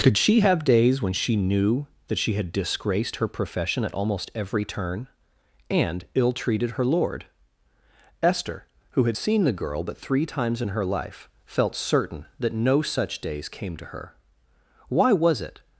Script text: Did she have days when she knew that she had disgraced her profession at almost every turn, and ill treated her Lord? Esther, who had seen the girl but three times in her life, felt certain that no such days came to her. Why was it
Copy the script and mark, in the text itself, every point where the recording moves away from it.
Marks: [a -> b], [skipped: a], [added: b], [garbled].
[Did -> Could] she have days when she knew that she had disgraced her profession at almost every turn, and ill treated her Lord? Esther, who had seen the girl but three times in her life, felt certain that no such days came to her. Why was it